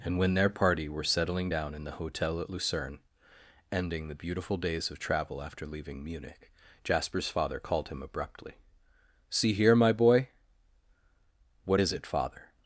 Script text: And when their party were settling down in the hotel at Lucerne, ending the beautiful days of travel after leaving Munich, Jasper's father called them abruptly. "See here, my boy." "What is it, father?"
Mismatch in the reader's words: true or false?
true